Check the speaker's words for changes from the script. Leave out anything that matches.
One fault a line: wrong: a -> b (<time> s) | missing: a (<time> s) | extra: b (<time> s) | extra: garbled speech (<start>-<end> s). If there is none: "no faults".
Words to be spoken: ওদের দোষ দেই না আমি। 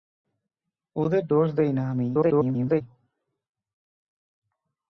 extra: garbled speech (2.1-2.8 s)